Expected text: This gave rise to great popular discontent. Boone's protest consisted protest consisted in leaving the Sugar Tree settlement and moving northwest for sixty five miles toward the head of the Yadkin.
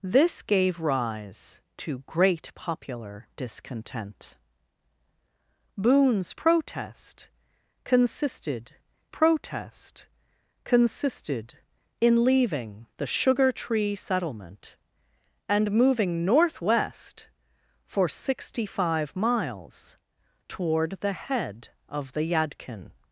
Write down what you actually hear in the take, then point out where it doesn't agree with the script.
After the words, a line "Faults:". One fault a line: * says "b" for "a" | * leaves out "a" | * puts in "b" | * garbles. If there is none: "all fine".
This gave rise to great popular discontent. Boone's protest consisted protest consisted in leaving the Sugar Tree settlement and moving northwest for sixty five miles toward the head of the Yadkin.
Faults:
all fine